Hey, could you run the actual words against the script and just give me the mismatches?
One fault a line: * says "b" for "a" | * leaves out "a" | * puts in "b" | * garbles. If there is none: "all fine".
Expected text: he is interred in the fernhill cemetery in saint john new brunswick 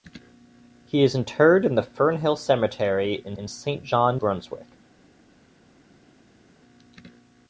* puts in "in"
* leaves out "new"